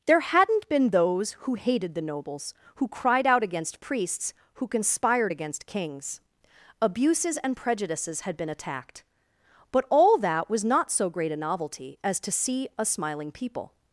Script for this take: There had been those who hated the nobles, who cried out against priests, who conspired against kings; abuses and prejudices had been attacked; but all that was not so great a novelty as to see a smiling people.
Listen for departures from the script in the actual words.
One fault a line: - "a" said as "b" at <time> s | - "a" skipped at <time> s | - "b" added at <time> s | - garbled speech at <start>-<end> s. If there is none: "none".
- "had" said as "hadn't" at 0.2 s